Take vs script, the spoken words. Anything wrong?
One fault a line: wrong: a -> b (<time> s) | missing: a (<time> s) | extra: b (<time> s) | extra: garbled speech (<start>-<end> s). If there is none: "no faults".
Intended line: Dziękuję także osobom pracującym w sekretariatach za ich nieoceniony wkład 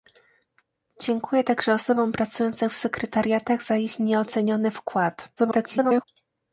extra: garbled speech (5.4-6.0 s)